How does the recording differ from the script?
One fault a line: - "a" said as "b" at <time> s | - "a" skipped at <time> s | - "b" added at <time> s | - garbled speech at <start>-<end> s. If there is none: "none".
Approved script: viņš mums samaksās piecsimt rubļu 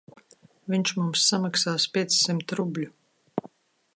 none